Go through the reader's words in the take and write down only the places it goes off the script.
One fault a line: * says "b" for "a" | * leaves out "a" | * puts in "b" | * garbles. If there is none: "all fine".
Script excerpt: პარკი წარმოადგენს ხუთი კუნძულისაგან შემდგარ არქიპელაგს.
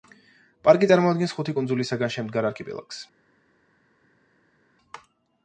all fine